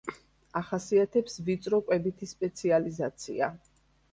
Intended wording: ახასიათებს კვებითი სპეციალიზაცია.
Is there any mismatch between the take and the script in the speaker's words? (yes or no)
yes